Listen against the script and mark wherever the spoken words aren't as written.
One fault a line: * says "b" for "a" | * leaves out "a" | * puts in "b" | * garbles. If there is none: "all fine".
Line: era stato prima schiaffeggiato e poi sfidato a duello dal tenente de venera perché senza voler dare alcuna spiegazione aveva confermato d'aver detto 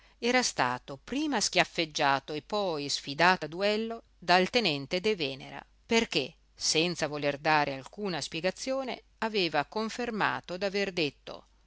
all fine